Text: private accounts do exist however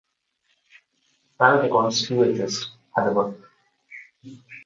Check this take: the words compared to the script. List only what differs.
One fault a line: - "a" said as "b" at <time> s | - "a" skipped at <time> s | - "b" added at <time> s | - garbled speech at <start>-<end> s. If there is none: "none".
none